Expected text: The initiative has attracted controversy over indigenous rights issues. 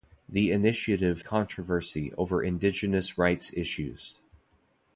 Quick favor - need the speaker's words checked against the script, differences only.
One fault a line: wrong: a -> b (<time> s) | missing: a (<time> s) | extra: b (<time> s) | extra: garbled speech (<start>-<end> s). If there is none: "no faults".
missing: has attracted (1.2 s)